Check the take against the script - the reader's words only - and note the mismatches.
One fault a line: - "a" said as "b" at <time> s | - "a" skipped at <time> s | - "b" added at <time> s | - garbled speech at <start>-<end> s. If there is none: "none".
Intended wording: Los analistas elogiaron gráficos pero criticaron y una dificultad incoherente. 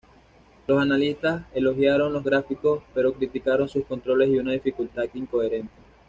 - "los" added at 2.1 s
- "sus controles" added at 3.7 s